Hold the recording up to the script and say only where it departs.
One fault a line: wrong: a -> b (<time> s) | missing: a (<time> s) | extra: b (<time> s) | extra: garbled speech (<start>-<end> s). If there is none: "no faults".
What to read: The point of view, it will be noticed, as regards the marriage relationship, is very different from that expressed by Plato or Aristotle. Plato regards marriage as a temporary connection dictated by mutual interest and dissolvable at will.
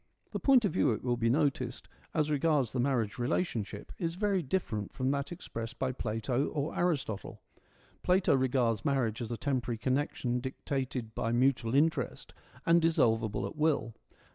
no faults